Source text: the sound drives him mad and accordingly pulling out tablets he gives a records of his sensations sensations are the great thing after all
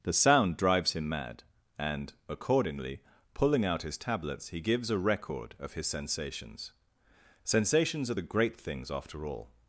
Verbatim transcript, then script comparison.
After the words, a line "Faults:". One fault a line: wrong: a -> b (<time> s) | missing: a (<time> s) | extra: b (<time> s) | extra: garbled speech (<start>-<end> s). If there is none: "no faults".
the sound drives him mad and accordingly pulling out his tablets he gives a record of his sensations sensations are the great things after all
Faults:
extra: his (3.8 s)
wrong: records -> record (5.0 s)
wrong: thing -> things (8.6 s)